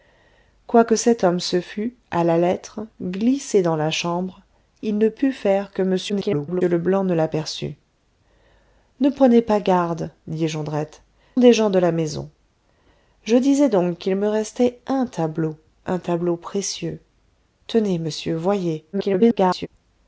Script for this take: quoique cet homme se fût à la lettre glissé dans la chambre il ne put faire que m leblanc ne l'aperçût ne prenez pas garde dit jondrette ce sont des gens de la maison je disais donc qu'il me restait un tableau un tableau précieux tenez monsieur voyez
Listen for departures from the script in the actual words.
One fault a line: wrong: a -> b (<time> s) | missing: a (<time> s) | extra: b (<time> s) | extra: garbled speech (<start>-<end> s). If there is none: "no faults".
extra: garbled speech (6.1-6.6 s)
missing: ce sont (11.0 s)
extra: garbled speech (18.9-19.7 s)